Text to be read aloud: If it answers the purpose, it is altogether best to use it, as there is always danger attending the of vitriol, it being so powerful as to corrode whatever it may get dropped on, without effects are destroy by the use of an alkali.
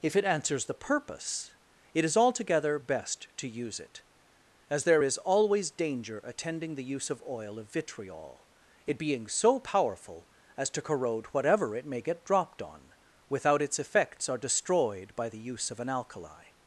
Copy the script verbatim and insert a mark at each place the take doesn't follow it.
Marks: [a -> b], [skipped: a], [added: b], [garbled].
If it answers the purpose, it is altogether best to use it, as there is always danger attending the [added: use] of [added: oil of] vitriol, it being so powerful as to corrode whatever it may get dropped on, without [added: its] effects are [destroy -> destroyed] by the use of an alkali.